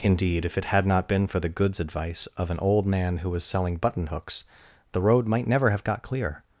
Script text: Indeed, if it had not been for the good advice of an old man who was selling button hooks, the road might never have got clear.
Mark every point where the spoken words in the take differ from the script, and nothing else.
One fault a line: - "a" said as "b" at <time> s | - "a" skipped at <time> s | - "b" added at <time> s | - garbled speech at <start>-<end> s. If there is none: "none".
- "good" said as "goods" at 1.5 s